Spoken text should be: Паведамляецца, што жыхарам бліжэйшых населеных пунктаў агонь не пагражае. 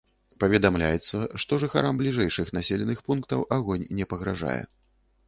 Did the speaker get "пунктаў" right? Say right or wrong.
right